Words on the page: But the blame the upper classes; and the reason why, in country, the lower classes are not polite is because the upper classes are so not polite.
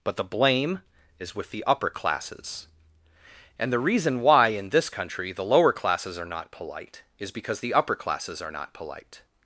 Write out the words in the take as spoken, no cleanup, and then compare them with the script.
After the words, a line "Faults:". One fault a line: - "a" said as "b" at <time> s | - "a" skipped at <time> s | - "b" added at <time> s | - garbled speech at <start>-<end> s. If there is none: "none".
But the blame is with the upper classes; and the reason why, in this country, the lower classes are not polite is because the upper classes are not polite.
Faults:
- "is with" added at 1.2 s
- "this" added at 4.7 s
- "so" skipped at 8.5 s